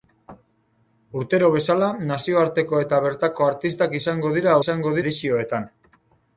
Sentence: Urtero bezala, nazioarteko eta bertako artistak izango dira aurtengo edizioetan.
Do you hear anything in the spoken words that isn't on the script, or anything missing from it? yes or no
yes